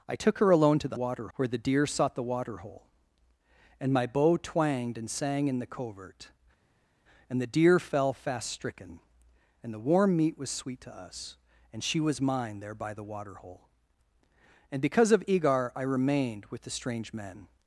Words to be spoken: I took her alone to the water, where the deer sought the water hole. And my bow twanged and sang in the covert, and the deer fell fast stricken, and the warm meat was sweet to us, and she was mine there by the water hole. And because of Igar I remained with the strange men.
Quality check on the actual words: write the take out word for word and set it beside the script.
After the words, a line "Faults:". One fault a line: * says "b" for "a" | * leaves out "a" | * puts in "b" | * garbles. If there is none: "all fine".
I took her alone to the water, where the deer sought the water hole. And my bow twanged and sang in the covert, and the deer fell fast stricken, and the warm meat was sweet to us, and she was mine there by the water hole. And because of Igar I remained with the strange men.
Faults:
all fine